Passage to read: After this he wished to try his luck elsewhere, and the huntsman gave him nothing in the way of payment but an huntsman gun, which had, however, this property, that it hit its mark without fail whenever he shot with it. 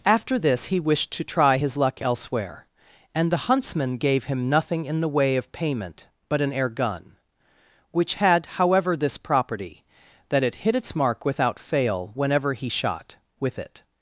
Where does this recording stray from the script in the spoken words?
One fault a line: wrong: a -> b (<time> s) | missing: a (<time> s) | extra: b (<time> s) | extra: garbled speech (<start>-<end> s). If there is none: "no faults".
wrong: huntsman -> air (6.5 s)